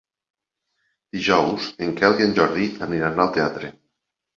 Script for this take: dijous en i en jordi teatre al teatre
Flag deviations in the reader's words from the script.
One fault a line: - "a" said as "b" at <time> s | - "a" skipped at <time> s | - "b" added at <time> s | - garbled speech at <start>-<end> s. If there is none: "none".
- "quel" added at 2.0 s
- "teatre" said as "aniran" at 2.9 s